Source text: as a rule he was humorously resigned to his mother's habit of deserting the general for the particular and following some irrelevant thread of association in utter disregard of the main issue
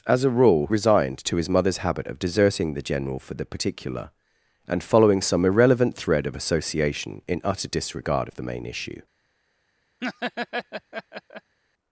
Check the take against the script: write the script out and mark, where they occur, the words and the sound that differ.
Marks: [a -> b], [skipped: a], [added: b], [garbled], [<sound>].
as a rule [skipped: he was humorously] resigned to his mother's habit of deserting the general for the particular and following some irrelevant thread of association in utter disregard of the main issue [laugh]